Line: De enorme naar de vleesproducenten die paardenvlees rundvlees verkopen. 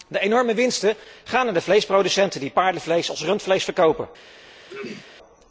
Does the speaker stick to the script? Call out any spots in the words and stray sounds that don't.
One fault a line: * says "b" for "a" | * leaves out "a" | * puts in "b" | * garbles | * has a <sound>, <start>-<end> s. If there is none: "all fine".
* puts in "winsten gaan"
* puts in "als"
* has a throat clearing, 4.7-5.1 s